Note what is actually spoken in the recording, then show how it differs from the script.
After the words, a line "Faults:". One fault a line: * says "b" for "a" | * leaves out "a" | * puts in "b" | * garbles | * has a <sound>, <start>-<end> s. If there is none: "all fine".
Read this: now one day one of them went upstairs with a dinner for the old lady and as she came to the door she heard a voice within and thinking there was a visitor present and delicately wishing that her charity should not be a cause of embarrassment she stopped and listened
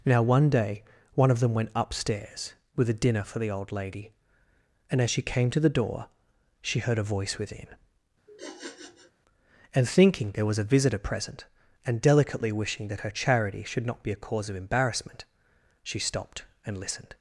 now one day one of them went upstairs with a dinner for the old lady and as she came to the door she heard a voice within and thinking there was a visitor present and delicately wishing that her charity should not be a cause of embarrassment she stopped and listened
Faults:
* has a sniff, 8.3-9.1 s